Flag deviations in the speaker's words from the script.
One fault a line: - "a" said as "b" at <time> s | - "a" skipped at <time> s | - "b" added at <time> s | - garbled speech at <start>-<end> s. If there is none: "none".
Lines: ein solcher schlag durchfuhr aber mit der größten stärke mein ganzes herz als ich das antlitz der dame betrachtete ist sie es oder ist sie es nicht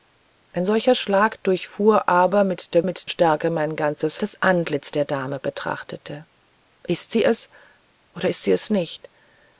- "größten" said as "mit" at 2.8 s
- "herz als ich" skipped at 4.2 s